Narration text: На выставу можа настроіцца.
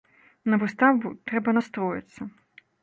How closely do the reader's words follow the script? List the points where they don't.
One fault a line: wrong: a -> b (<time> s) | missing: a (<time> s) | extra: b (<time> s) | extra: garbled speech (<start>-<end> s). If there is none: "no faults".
wrong: можа -> трэба (1.3 s)